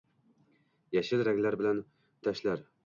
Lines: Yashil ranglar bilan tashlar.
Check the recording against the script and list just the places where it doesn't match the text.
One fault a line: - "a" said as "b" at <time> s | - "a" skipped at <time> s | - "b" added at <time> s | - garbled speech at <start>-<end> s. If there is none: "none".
none